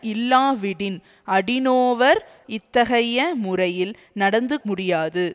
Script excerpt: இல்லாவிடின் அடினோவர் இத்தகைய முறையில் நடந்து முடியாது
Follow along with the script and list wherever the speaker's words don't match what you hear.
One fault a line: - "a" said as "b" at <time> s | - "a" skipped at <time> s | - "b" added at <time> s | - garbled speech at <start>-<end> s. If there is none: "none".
none